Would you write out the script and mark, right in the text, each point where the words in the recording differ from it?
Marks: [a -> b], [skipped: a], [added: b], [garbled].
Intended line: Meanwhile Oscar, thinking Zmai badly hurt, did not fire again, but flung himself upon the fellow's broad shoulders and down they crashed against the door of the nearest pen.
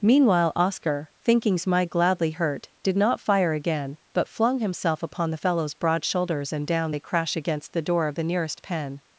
Meanwhile Oscar, thinking Zmai [badly -> gladly] hurt, did not fire again, but flung himself upon the fellow's broad shoulders and down they [crashed -> crash] against the door of the nearest pen.